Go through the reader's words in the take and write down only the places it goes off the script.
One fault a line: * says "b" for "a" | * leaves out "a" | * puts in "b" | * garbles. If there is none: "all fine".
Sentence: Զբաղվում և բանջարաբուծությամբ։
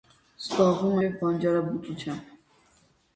all fine